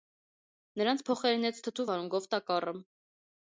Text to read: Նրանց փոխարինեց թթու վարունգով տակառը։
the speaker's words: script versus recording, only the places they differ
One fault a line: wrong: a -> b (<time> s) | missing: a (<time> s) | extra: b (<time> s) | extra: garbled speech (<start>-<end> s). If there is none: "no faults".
no faults